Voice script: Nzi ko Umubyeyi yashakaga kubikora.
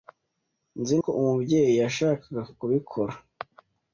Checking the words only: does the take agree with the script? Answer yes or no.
yes